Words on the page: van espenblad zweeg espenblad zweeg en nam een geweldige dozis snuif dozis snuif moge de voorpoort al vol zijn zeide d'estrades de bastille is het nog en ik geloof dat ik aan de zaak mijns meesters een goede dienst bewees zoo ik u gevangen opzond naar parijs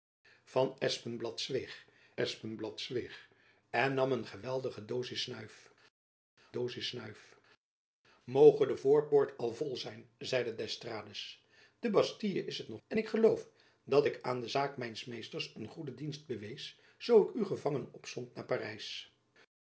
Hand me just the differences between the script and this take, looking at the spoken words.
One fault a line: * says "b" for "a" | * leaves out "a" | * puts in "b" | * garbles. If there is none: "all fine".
all fine